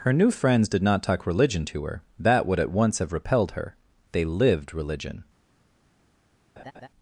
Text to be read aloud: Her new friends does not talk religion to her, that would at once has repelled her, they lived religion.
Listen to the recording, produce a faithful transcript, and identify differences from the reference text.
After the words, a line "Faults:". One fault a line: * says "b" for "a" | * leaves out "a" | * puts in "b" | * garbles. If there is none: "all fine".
Her new friends did not talk religion to her, that would at once have repelled her, they lived religion.
Faults:
* says "did" for "does"
* says "have" for "has"